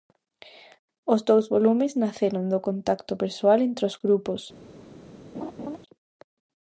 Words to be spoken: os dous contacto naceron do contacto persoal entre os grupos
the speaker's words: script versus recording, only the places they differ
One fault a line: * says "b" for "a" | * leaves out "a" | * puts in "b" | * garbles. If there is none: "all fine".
* says "volumes" for "contacto"